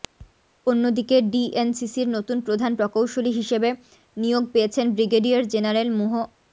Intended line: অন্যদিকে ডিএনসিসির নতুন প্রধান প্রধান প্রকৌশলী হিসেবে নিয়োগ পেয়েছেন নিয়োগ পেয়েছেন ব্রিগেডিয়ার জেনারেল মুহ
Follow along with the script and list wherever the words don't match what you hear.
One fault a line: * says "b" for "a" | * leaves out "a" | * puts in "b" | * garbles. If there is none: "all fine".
* leaves out "প্রধান"
* leaves out "নিয়োগ পেয়েছেন"